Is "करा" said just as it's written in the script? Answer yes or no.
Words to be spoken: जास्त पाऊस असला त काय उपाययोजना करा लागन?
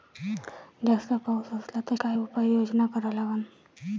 yes